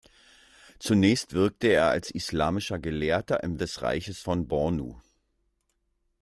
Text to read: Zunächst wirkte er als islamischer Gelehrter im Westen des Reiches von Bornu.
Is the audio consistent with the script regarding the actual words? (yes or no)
no